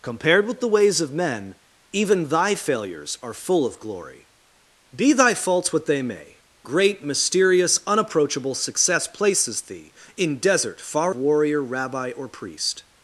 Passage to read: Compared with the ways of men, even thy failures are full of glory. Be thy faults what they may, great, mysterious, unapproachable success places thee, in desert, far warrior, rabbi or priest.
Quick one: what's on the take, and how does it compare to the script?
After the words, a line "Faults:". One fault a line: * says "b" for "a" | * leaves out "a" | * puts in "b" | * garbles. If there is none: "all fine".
Compared with the ways of men, even thy failures are full of glory. Be thy faults what they may, great, mysterious, unapproachable success places thee, in desert, far warrior, rabbi or priest.
Faults:
all fine